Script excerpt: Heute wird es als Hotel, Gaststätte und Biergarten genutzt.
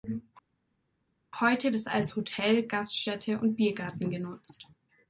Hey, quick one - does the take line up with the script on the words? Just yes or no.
no